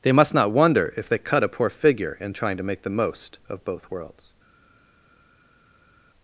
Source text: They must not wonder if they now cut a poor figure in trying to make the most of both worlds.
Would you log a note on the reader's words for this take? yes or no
yes